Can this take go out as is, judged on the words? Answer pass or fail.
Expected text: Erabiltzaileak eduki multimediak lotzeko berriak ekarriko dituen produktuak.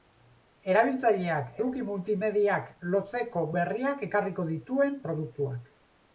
pass